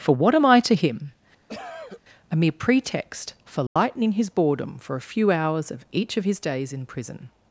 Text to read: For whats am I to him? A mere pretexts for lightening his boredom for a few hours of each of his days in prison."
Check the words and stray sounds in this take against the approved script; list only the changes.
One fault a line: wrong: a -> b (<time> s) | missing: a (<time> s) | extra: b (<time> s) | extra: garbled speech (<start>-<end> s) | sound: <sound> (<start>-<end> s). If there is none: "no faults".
wrong: whats -> what (0.1 s)
sound: cough (1.5-2.0 s)
wrong: pretexts -> pretext (2.6 s)
sound: dropout (3.7-3.8 s)